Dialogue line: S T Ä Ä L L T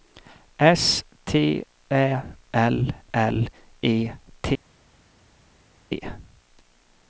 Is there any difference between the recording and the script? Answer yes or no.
yes